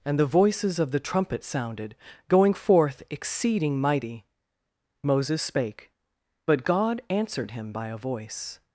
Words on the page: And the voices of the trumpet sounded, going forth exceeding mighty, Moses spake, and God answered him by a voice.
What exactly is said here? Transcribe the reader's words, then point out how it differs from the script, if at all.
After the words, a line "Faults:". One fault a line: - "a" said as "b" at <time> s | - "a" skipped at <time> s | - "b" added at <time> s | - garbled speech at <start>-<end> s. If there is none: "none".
And the voices of the trumpet sounded, going forth exceeding mighty, Moses spake, but God answered him by a voice.
Faults:
- "and" said as "but" at 6.5 s